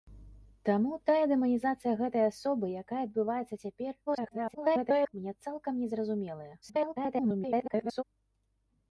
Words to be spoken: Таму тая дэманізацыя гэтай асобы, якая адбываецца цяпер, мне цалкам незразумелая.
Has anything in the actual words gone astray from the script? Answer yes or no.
yes